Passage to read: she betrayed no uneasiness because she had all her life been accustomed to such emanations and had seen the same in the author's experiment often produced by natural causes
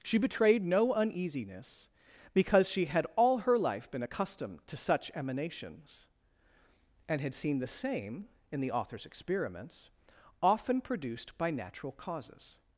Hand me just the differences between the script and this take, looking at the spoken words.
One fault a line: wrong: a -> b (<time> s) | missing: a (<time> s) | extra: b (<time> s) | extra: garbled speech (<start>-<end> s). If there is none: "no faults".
wrong: experiment -> experiments (9.0 s)